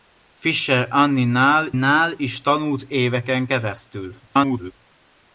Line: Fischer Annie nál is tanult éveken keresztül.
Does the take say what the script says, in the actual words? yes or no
no